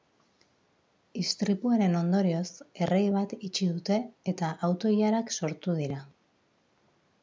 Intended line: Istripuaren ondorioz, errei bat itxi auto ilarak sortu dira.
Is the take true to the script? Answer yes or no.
no